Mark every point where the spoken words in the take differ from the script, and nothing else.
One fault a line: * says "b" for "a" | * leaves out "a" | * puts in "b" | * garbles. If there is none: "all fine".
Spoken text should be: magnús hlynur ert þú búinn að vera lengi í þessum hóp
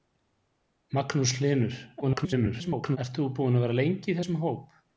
* garbles